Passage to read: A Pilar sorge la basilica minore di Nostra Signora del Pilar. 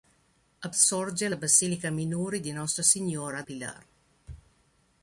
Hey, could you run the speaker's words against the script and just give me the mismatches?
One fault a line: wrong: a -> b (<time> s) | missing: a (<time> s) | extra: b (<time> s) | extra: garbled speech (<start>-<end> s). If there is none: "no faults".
missing: Pilar (0.7 s)
missing: del (3.4 s)